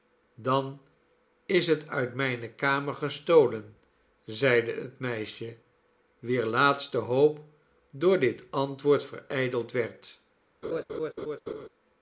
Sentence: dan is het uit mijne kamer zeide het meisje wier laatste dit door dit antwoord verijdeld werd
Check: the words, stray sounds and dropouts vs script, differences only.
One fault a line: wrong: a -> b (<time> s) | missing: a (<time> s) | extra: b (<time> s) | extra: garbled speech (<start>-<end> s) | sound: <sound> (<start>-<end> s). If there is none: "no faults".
extra: gestolen (3.0 s)
wrong: dit -> hoop (7.0 s)
sound: laugh (10.6-11.7 s)